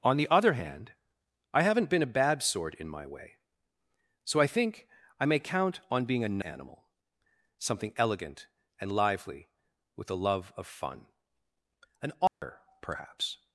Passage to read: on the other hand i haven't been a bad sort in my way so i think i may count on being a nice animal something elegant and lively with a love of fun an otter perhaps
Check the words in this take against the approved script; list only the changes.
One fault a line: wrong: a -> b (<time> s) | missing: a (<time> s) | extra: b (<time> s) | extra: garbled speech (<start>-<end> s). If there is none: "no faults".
missing: nice (6.4 s)